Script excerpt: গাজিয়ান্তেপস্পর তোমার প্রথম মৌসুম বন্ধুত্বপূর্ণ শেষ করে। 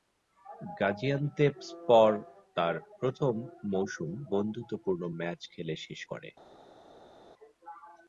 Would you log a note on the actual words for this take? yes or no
yes